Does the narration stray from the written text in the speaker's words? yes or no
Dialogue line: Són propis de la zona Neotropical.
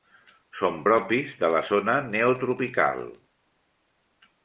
no